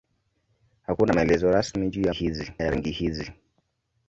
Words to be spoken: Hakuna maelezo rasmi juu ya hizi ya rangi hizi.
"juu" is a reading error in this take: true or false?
false